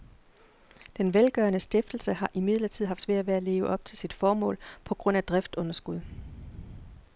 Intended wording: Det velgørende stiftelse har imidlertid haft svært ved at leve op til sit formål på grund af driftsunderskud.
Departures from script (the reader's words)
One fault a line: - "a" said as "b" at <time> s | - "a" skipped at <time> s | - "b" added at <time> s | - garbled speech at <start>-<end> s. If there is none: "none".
- "Det" said as "Den" at 1.0 s